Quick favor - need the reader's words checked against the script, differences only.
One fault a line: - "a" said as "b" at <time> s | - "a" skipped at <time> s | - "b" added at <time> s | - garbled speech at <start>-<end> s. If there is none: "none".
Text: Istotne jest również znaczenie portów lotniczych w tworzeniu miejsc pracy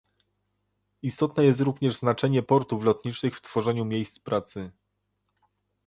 none